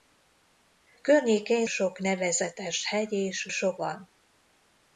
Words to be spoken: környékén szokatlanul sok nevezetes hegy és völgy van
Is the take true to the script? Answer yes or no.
no